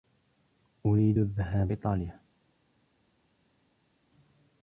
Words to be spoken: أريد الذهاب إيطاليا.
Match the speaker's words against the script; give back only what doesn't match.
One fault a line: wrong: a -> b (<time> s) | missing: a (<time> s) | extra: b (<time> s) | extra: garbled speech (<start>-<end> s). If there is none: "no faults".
no faults